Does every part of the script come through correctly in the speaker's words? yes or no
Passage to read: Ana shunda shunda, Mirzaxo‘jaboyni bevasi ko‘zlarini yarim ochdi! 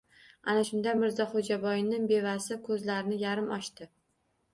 no